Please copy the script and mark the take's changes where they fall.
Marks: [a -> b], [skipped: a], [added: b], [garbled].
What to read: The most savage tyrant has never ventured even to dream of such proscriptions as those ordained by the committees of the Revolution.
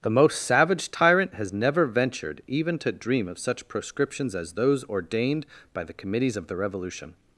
The most savage tyrant has never ventured even to dream of such proscriptions as those ordained by the committees of the Revolution.